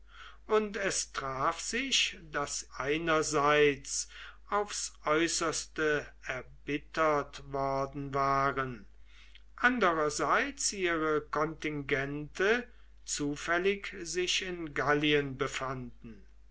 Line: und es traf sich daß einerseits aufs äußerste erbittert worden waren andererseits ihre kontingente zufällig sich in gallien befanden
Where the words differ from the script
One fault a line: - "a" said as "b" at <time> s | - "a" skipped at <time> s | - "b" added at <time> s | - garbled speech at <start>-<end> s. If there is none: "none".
none